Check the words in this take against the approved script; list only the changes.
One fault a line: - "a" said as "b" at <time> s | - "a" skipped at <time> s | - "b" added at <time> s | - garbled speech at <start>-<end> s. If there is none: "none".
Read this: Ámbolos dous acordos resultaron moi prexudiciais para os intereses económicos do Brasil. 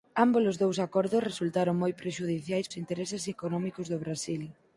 - "para" skipped at 2.7 s